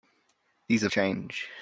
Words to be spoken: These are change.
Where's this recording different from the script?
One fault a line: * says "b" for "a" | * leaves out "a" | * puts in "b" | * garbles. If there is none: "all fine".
all fine